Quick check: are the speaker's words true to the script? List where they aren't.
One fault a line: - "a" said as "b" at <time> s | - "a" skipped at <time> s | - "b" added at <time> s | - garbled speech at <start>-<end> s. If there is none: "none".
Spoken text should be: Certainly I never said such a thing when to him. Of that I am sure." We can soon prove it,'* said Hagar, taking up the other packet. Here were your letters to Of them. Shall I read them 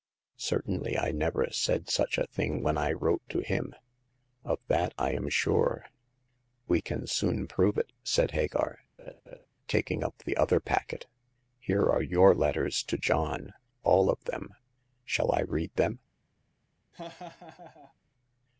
- "I wrote" added at 2.8 s
- "were" said as "are" at 11.9 s
- "John all" added at 13.0 s